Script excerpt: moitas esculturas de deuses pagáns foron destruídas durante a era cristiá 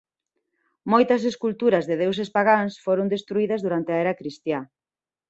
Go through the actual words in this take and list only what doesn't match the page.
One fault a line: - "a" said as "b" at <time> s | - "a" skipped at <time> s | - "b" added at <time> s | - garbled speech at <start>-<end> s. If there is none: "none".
none